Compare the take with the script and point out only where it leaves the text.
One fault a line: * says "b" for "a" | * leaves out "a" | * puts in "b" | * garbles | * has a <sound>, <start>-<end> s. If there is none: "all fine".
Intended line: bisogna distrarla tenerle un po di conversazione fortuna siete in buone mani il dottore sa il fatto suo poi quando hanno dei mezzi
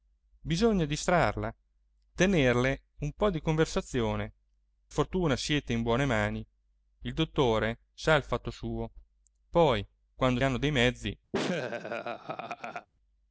* has a laugh, 11.3-12.9 s